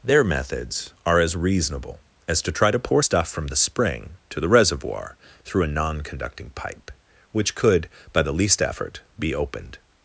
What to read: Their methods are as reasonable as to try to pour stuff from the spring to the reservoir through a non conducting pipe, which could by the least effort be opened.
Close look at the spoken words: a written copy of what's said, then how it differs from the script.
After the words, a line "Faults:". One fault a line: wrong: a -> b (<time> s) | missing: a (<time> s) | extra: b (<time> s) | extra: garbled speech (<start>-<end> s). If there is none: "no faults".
Their methods are as reasonable as to try to pour stuff from the spring to the reservoir through a non conducting pipe, which could by the least effort be opened.
Faults:
no faults